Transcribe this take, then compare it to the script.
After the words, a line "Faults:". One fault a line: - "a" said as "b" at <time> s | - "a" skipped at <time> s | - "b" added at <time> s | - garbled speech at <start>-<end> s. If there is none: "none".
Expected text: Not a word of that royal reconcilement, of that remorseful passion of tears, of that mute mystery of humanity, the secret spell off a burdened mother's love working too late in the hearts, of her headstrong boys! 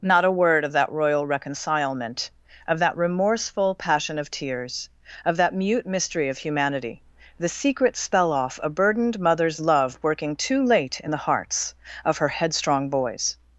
Not a word of that royal reconcilement, of that remorseful passion of tears, of that mute mystery of humanity, the secret spell off a burdened mother's love working too late in the hearts, of her headstrong boys!
Faults:
none